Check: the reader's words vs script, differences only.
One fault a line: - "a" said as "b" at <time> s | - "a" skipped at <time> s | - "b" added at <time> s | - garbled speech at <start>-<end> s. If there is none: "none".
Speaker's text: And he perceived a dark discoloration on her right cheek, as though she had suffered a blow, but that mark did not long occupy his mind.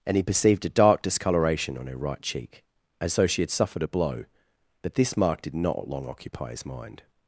- "that" said as "this" at 4.9 s